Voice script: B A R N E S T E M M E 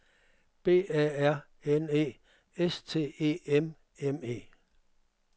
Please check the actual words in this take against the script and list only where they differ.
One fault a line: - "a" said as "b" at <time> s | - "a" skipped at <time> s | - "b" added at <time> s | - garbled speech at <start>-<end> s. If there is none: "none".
none